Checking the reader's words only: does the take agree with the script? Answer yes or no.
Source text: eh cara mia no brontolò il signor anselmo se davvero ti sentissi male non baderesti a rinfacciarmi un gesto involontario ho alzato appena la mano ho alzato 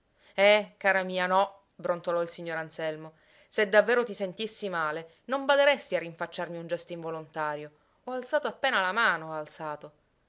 yes